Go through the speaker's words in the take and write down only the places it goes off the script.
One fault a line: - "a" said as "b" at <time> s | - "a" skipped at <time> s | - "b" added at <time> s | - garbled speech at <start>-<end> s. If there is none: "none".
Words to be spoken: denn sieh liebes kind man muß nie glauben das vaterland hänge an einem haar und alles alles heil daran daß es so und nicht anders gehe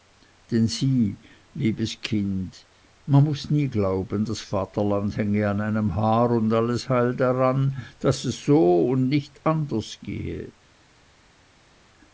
- "alles" skipped at 6.9 s